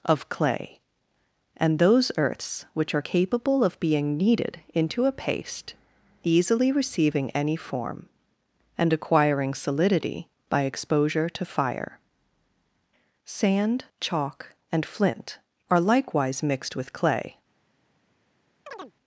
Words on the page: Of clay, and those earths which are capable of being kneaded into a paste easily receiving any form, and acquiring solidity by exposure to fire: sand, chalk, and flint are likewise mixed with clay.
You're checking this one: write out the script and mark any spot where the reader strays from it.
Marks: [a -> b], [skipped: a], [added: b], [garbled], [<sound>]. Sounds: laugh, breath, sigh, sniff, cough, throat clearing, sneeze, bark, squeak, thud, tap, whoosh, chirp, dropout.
Of clay, and those earths which are capable of being kneaded into a paste easily receiving any form, and acquiring solidity by exposure to fire: sand, chalk, and flint are likewise mixed with clay. [chirp]